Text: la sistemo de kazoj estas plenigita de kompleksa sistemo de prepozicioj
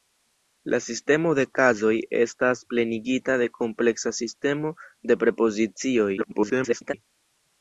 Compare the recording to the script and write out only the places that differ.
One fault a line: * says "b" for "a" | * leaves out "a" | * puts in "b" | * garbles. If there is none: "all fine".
* garbles